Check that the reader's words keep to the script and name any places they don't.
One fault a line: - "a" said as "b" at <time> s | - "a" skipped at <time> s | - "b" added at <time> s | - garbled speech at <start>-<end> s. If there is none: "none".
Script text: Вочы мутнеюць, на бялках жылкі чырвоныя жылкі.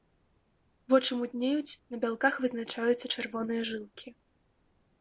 - "жылкі" said as "вызначаюцца" at 2.5 s